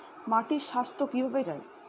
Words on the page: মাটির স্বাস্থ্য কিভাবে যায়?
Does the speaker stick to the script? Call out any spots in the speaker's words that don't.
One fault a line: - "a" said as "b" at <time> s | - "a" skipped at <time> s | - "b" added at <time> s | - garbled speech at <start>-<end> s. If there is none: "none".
none